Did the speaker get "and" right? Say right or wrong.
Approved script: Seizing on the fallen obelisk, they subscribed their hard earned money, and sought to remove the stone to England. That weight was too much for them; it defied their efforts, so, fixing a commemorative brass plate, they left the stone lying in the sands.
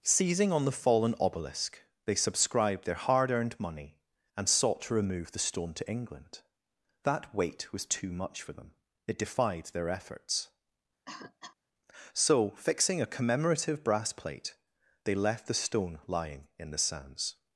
right